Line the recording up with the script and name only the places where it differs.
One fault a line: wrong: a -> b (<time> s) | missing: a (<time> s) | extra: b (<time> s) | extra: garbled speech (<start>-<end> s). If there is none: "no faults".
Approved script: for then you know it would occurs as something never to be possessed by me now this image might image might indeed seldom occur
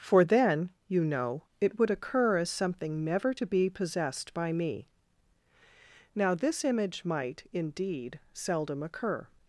wrong: occurs -> occur (1.9 s)
missing: image might (7.5 s)